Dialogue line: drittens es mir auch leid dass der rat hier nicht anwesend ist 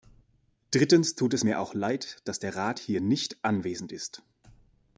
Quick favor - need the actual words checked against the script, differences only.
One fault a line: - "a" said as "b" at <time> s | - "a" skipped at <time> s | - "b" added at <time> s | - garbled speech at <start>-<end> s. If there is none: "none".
- "tut" added at 1.1 s